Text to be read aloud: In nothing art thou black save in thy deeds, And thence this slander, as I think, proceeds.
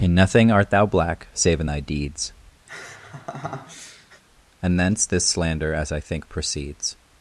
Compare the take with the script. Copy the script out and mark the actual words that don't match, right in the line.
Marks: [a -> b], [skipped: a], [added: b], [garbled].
In nothing art thou black save in thy deeds, And thence this slander, as I think, proceeds.